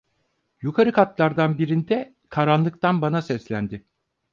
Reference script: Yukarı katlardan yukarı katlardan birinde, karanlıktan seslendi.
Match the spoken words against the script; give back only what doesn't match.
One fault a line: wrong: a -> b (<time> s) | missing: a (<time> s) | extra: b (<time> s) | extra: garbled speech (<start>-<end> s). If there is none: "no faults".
missing: yukarı katlardan (1.6 s)
extra: bana (3.0 s)